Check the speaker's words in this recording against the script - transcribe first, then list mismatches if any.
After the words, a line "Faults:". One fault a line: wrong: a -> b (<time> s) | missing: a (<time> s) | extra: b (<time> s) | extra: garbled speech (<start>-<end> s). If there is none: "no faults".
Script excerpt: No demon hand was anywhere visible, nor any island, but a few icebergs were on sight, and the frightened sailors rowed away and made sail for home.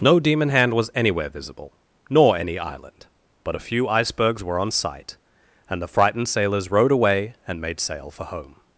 No demon hand was anywhere visible, nor any island, but a few icebergs were on sight, and the frightened sailors rowed away and made sail for home.
Faults:
no faults